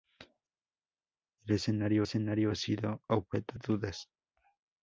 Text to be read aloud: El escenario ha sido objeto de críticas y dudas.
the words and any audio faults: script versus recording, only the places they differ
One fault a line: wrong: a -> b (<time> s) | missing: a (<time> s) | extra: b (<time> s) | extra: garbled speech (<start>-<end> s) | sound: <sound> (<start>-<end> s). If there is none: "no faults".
extra: escenario (2.0 s)
missing: de críticas y (3.6 s)